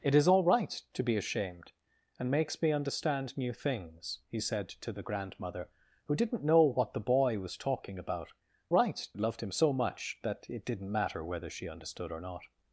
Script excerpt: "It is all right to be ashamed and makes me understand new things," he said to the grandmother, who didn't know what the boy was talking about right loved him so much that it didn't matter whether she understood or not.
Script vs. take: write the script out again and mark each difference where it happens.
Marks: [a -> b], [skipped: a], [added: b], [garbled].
"It is all right to be ashamed and makes me understand new things," he said to the grandmother, who didn't know what the boy was talking about right loved him so much that it didn't matter whether she understood or not.